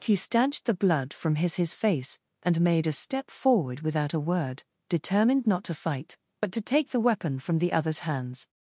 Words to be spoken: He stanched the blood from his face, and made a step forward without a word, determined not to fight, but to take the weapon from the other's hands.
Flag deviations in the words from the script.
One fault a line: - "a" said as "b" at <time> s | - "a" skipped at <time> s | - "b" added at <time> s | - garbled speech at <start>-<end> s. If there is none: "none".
- "his" added at 1.6 s